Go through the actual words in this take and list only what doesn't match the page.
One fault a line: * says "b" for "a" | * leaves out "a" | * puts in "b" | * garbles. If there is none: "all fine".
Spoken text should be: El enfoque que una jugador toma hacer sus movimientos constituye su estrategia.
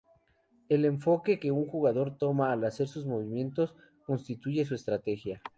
* says "un" for "una"
* puts in "al"